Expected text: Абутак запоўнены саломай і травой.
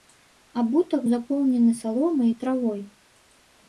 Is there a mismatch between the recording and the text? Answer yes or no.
no